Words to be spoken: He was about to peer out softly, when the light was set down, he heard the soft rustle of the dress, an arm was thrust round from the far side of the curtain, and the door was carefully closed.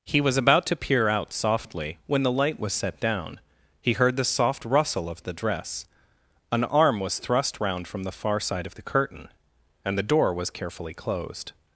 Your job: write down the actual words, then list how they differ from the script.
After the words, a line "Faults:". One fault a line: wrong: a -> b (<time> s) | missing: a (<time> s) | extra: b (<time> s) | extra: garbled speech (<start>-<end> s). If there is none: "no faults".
He was about to peer out softly, when the light was set down, he heard the soft rustle of the dress, an arm was thrust round from the far side of the curtain, and the door was carefully closed.
Faults:
no faults